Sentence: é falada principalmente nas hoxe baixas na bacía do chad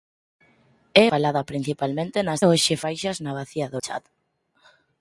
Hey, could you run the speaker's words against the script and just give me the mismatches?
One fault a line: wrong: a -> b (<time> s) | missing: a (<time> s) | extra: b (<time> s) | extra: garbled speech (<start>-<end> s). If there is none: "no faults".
no faults